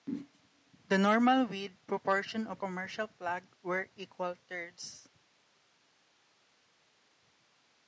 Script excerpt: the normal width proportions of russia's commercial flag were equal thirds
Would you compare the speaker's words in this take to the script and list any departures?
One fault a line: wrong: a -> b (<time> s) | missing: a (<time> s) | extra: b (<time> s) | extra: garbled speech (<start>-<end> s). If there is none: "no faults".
missing: russia's (2.6 s)